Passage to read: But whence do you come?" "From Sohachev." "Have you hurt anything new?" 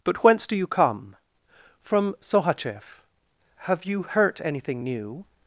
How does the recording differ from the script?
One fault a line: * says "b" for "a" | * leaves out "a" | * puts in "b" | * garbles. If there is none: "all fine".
all fine